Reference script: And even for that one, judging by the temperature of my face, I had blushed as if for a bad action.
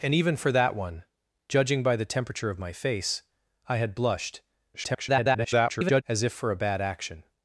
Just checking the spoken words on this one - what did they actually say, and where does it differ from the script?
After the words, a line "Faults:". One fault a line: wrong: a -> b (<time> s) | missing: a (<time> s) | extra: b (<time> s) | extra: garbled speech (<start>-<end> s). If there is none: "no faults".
And even for that one, judging by the temperature of my face, I had blushed [garbled] as if for a bad action.
Faults:
extra: garbled speech (4.7-6.0 s)